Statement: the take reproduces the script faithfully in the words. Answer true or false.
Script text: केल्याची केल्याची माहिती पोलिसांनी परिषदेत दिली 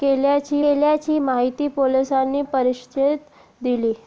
true